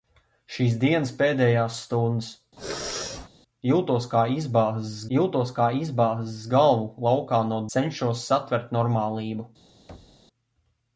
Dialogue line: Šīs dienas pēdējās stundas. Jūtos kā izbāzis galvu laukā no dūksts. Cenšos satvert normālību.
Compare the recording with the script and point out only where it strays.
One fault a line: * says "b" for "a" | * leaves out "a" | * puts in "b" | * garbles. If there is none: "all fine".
* puts in "jūtos kā izbāzis"
* leaves out "dūksts"